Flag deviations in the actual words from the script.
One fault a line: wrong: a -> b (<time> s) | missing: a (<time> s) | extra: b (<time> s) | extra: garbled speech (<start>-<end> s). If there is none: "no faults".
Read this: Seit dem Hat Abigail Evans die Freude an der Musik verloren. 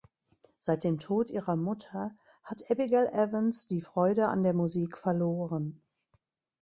extra: Tod ihrer Mutter (1.0 s)